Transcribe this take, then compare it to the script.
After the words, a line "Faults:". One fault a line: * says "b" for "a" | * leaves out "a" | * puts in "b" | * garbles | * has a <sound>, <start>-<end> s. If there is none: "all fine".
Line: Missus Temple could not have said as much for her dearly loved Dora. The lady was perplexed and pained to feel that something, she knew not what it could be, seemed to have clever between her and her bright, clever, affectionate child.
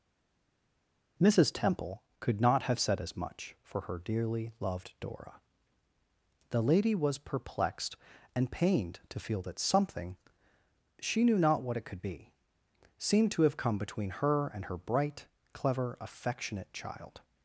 Missus Temple could not have said as much for her dearly loved Dora. The lady was perplexed and pained to feel that something, she knew not what it could be, seemed to have come between her and her bright, clever, affectionate child.
Faults:
* says "come" for "clever"